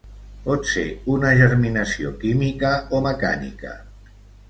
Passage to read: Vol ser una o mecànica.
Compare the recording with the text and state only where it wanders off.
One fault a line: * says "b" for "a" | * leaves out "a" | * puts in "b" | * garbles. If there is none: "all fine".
* says "Pot" for "Vol"
* puts in "germinació química"